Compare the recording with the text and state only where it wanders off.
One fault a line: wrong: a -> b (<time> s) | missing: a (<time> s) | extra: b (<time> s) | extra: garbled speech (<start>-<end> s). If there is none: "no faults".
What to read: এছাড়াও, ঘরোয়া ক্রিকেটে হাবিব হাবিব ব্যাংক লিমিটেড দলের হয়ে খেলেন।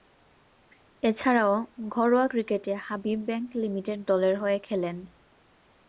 missing: হাবিব (3.2 s)